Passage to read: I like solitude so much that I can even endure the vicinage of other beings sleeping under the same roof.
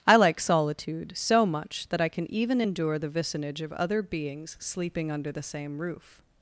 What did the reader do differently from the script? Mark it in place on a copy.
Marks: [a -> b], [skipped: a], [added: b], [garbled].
I like solitude so much that I can even endure the vicinage of other beings sleeping under the same roof.